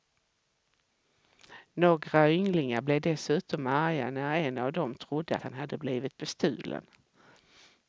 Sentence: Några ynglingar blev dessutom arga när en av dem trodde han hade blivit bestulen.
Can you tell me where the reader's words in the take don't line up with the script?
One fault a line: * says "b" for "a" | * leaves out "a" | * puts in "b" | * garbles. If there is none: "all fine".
all fine